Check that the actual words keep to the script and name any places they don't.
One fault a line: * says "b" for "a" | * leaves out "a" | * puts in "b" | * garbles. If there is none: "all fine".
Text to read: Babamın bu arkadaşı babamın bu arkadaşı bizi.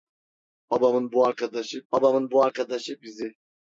all fine